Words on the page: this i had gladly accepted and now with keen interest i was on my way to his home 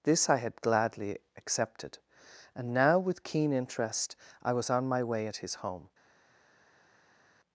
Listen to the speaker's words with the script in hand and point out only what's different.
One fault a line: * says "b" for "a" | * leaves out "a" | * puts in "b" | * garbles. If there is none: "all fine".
* says "at" for "to"